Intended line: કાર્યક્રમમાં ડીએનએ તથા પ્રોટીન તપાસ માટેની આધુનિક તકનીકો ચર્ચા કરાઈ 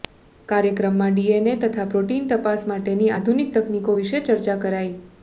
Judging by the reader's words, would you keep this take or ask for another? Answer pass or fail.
fail